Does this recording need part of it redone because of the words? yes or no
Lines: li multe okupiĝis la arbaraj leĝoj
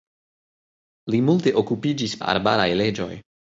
no